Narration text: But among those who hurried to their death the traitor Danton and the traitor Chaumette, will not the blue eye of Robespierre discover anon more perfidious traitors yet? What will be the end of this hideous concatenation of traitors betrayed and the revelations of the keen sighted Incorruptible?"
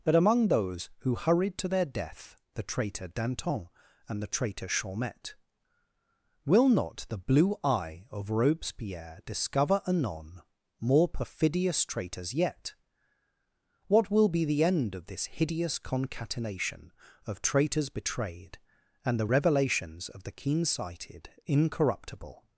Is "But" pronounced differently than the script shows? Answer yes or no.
yes